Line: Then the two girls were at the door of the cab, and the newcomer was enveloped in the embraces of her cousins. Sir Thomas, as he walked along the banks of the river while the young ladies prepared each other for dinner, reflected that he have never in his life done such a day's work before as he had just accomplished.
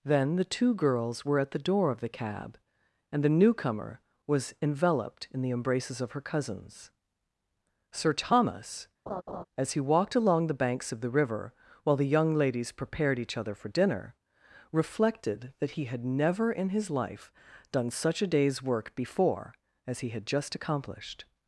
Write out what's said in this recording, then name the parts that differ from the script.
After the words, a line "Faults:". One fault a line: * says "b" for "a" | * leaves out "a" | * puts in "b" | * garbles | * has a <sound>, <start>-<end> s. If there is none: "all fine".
Then the two girls were at the door of the cab, and the newcomer was enveloped in the embraces of her cousins. Sir Thomas, as he walked along the banks of the river while the young ladies prepared each other for dinner, reflected that he had never in his life done such a day's work before as he had just accomplished.
Faults:
* has a laugh, 9.1-9.4 s
* says "had" for "have"